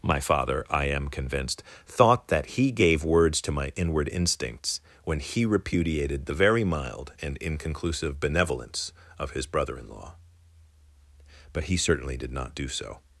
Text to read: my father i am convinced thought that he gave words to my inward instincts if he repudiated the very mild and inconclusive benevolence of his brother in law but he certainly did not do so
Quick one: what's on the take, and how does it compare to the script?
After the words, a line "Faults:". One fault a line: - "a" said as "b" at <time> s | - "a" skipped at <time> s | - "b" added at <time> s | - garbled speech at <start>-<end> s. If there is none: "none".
my father i am convinced thought that he gave words to my inward instincts when he repudiated the very mild and inconclusive benevolence of his brother in law but he certainly did not do so
Faults:
- "if" said as "when" at 5.0 s